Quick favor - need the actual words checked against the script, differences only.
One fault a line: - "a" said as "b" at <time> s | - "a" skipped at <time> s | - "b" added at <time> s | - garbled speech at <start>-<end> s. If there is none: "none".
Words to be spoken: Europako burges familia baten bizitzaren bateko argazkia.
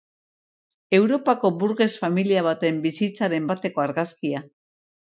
none